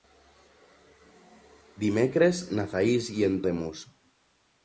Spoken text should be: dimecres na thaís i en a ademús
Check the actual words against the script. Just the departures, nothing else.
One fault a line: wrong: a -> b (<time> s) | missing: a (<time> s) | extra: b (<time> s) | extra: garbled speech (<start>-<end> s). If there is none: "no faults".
no faults